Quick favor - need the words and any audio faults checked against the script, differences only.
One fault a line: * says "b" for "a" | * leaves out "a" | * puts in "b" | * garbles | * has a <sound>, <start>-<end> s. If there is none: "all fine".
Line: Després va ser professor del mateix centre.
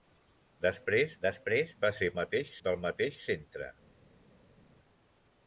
* puts in "després"
* says "mateix" for "professor"